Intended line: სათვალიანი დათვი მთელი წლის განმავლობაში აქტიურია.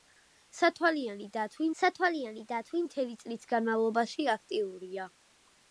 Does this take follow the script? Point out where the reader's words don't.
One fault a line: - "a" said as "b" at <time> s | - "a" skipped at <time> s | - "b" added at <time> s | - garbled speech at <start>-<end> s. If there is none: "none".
- "სათვალიანი დათვი" added at 1.8 s